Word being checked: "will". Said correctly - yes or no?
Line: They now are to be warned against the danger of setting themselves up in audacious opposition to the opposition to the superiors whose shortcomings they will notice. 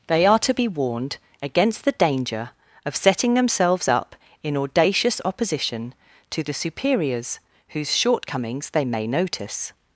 no